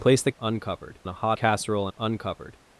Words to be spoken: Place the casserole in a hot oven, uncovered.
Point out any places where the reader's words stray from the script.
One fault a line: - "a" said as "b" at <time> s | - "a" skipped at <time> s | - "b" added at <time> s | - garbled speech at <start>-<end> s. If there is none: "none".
- "casserole" said as "uncovered" at 0.4 s
- "oven" said as "casserole" at 1.3 s